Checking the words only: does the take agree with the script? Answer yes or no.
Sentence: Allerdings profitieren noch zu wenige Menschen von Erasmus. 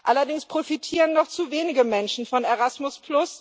yes